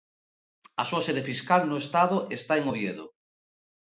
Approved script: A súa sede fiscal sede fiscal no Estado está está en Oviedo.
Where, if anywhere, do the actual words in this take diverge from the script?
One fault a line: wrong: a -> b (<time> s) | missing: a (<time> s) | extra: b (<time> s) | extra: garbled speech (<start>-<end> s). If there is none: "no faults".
missing: sede fiscal (1.6 s)
missing: está (2.5 s)